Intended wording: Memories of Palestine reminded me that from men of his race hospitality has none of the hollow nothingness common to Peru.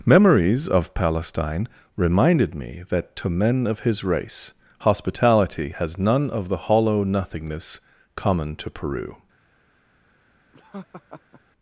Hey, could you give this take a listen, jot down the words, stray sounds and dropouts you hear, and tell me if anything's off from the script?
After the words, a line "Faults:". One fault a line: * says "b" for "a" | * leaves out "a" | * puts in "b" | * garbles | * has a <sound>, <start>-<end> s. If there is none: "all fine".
Memories of Palestine reminded me that to men of his race hospitality has none of the hollow nothingness common to Peru.
Faults:
* says "to" for "from"
* has a laugh, 10.5-11.4 s